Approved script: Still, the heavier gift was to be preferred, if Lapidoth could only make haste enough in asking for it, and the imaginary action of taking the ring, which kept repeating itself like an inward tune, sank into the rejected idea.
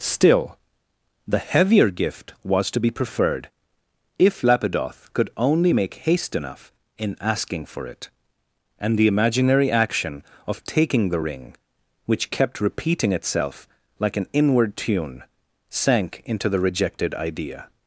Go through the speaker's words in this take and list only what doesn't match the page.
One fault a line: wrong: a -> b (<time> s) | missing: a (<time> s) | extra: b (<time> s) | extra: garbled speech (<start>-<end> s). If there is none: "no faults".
no faults